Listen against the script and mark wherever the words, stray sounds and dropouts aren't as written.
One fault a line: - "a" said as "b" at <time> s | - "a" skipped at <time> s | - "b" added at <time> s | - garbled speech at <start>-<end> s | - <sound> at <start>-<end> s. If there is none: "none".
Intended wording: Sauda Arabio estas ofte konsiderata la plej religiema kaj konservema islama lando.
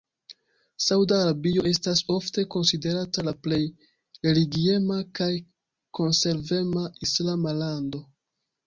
none